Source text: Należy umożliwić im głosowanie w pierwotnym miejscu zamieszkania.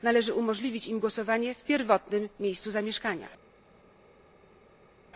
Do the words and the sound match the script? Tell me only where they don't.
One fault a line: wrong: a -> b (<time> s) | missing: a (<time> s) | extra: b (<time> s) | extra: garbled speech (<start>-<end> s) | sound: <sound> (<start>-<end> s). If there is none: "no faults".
no faults